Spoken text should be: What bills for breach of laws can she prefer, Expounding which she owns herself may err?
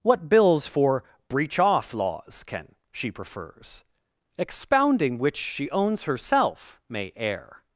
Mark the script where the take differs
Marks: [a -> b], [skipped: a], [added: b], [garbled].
What bills for breach [of -> off] laws can she [prefer, -> prefers] Expounding which she owns herself may err?